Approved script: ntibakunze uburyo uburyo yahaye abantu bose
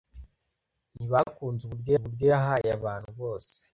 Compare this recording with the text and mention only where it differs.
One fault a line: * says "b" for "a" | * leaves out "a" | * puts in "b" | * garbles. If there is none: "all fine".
all fine